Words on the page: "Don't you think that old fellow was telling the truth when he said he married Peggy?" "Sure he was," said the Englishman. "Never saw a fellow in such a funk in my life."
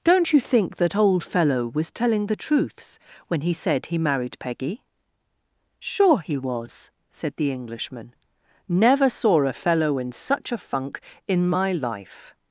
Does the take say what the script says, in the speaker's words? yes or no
no